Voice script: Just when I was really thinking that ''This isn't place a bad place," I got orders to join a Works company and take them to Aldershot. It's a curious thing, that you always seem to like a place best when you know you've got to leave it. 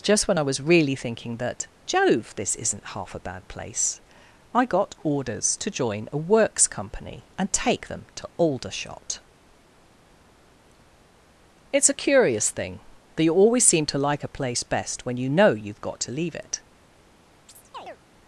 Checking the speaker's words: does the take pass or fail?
fail